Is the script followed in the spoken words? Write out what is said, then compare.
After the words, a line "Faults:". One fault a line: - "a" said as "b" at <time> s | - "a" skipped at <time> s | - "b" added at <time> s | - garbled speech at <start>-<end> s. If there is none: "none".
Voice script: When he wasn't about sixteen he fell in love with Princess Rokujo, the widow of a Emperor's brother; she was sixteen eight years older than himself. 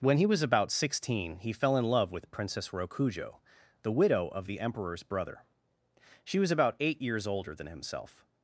When he was about sixteen he fell in love with Princess Rokujo, the widow of the Emperor's brother; she was about eight years older than himself.
Faults:
- "wasn't" said as "was" at 0.2 s
- "a" said as "the" at 4.5 s
- "sixteen" said as "about" at 6.5 s